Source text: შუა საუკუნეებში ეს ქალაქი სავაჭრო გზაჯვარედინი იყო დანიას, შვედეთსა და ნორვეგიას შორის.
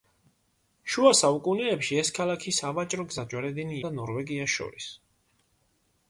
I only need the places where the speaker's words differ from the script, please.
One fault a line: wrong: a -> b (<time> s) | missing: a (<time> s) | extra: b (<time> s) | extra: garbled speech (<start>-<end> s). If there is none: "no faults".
missing: იყო დანიას შვედეთსა (3.8 s)